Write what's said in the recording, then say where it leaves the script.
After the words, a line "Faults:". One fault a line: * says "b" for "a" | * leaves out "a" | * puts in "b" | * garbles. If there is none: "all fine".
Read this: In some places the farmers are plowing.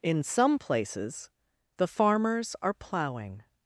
In some places the farmers are plowing.
Faults:
all fine